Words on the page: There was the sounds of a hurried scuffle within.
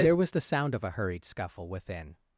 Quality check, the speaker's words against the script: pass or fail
fail